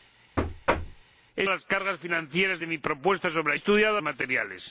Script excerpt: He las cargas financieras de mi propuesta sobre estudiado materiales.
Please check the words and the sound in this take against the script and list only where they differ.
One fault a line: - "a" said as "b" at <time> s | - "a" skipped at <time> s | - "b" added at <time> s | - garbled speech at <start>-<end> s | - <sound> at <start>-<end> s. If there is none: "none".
- thud at 0.4-1.0 s